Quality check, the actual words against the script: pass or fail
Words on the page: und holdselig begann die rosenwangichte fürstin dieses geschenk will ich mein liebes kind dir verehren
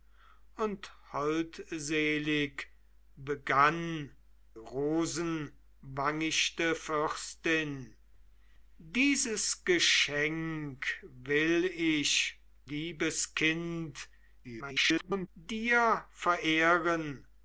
fail